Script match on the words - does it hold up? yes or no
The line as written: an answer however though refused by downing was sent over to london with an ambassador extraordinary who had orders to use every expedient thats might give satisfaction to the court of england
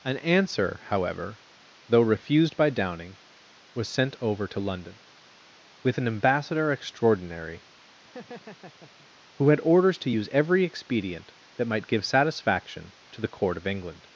no